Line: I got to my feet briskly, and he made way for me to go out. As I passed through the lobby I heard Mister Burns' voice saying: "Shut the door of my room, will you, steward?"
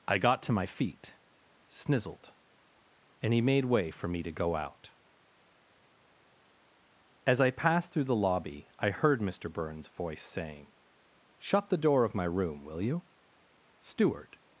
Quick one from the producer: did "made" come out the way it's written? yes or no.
yes